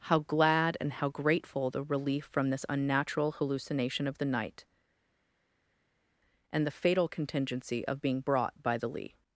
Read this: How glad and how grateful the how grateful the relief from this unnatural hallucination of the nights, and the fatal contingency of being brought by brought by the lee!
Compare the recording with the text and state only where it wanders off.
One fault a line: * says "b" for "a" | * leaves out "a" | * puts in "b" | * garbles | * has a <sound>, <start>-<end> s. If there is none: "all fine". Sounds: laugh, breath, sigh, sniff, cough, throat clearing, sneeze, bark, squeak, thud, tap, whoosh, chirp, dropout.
* leaves out "how grateful the"
* says "night" for "nights"
* leaves out "brought by"